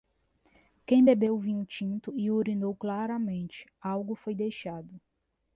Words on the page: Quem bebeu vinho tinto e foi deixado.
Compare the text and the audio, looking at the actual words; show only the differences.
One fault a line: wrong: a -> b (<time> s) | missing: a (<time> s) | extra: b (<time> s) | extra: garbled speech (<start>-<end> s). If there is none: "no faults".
extra: urinou claramente algo (2.3 s)